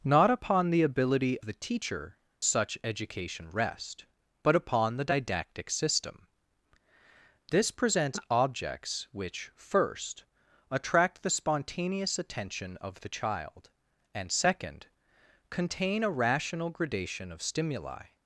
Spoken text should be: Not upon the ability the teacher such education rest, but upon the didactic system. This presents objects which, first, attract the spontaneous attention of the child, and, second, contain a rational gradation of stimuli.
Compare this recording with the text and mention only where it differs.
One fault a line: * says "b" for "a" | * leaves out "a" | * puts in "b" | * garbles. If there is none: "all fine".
all fine